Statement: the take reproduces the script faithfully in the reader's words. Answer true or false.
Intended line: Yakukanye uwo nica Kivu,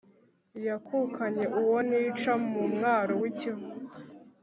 false